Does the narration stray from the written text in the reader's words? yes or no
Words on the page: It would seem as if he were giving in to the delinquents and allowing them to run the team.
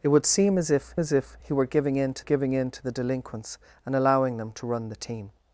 yes